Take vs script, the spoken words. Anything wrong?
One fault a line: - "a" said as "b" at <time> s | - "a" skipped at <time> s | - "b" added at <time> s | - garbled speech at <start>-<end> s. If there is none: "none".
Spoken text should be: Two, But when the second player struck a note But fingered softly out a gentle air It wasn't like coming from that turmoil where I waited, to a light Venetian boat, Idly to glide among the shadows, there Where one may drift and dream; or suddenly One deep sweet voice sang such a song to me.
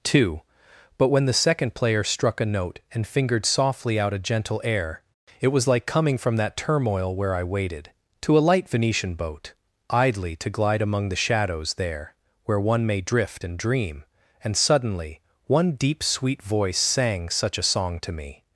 - "But" said as "And" at 2.9 s
- "wasn't" said as "was" at 5.5 s
- "or" said as "and" at 14.4 s